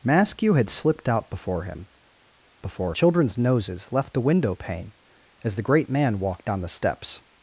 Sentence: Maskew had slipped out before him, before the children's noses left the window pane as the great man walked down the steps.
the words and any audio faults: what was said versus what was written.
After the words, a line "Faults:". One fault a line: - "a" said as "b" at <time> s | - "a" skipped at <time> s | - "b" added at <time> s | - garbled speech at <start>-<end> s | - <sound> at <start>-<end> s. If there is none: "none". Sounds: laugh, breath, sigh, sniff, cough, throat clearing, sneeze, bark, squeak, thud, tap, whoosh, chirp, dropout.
Maskew had slipped out before him, before the children's noses left the window pane as the great man walked down the steps.
Faults:
none